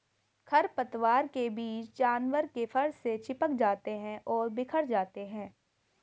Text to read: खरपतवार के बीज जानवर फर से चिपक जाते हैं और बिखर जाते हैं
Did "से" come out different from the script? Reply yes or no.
no